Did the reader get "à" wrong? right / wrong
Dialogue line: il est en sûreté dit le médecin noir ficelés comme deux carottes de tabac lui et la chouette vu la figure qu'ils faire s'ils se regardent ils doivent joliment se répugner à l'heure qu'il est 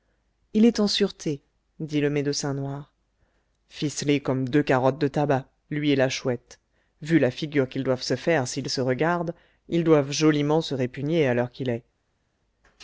right